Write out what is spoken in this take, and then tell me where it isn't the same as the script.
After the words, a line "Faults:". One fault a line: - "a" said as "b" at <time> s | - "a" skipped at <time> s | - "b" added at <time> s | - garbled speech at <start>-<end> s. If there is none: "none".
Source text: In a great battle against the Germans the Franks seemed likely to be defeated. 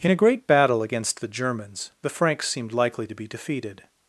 In a great battle against the Germans the Franks seemed likely to be defeated.
Faults:
none